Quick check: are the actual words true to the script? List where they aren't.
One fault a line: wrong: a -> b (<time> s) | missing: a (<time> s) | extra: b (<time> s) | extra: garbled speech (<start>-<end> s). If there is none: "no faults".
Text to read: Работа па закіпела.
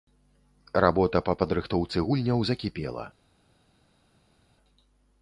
extra: падрыхтоўцы гульняў (1.4 s)